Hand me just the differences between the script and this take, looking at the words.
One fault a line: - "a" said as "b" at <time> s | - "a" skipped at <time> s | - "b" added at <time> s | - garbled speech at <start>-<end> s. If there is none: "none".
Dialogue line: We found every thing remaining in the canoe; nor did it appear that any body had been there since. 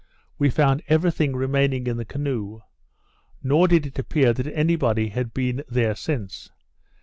none